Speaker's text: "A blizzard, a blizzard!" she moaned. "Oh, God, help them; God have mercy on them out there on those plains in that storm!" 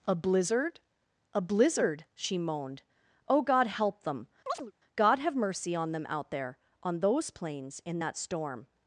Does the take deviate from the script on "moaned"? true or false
false